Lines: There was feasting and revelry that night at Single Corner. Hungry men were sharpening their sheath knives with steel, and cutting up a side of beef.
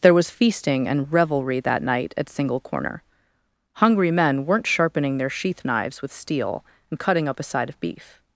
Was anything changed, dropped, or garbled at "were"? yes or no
yes